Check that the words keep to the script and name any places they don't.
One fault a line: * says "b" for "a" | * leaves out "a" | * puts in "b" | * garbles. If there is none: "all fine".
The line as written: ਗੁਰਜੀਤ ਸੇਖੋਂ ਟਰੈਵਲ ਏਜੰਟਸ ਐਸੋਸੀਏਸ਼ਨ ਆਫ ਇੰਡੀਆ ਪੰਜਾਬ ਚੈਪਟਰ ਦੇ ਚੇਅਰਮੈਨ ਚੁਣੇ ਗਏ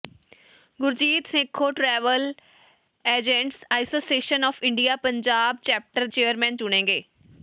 * leaves out "ਦੇ"